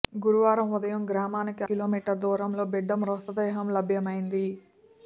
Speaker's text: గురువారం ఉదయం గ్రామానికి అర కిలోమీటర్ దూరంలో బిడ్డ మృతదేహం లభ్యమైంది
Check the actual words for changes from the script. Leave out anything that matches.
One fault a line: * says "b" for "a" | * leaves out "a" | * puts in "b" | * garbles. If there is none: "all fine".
* leaves out "అర"